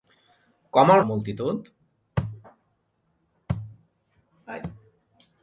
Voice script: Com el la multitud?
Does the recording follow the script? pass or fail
pass